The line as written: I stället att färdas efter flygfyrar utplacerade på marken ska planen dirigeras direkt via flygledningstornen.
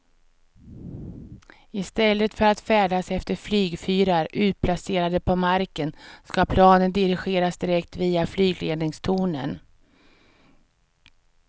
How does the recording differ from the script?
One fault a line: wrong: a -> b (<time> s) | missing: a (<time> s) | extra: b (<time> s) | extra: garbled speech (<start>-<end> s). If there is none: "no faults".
extra: för (2.3 s)